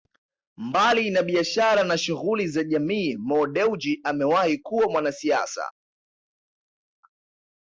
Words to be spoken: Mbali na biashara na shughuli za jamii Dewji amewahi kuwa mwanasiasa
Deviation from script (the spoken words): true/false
true